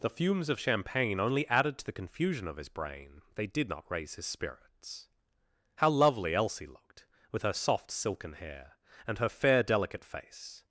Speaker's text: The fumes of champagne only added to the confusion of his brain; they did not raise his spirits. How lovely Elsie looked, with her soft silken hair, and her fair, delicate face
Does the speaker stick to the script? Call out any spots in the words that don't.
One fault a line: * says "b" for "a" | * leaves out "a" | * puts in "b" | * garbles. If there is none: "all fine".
all fine